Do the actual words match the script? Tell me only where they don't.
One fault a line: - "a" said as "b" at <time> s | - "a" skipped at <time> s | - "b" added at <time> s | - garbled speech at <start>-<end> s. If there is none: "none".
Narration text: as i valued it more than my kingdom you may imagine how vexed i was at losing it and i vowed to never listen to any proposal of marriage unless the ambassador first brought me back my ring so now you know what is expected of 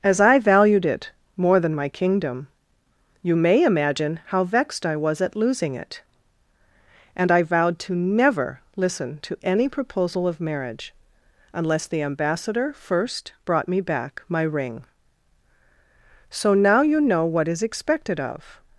none